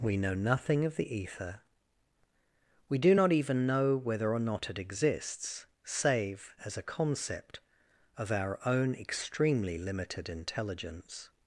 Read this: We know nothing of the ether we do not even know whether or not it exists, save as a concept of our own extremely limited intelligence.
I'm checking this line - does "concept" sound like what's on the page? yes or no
yes